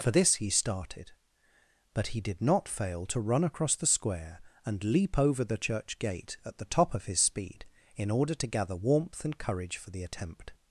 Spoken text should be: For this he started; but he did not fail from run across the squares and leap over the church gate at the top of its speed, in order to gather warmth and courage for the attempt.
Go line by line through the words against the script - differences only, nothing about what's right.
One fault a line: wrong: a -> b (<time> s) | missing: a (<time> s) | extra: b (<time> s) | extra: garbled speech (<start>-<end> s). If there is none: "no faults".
wrong: from -> to (3.0 s)
wrong: squares -> square (3.9 s)
wrong: its -> his (7.0 s)